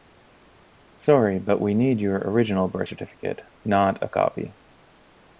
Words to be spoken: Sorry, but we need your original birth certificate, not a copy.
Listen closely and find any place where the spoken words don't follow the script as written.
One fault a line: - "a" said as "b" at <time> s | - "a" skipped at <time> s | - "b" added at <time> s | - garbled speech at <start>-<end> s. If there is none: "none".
none